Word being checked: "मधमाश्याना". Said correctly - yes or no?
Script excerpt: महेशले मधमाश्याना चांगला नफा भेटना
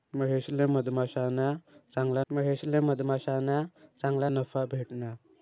yes